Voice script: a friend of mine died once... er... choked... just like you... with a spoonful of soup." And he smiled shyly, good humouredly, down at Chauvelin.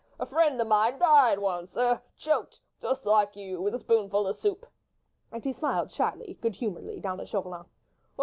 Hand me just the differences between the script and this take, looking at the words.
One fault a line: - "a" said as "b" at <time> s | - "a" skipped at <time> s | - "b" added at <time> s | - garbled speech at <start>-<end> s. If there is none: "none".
none